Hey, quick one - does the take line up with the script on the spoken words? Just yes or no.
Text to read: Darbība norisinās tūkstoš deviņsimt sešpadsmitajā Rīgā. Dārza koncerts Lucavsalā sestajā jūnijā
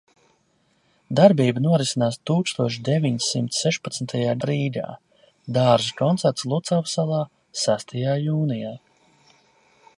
yes